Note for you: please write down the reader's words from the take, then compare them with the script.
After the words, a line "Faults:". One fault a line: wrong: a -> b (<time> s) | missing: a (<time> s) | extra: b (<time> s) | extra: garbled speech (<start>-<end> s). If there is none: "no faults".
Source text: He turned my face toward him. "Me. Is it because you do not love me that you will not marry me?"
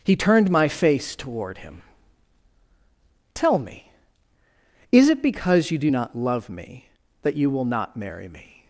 He turned my face toward him. "Tell me. Is it because you do not love me that you will not marry me?"
Faults:
extra: Tell (3.3 s)